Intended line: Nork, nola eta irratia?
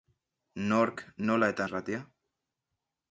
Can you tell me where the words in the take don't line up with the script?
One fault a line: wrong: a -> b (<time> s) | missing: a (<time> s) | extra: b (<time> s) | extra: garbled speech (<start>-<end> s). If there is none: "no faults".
no faults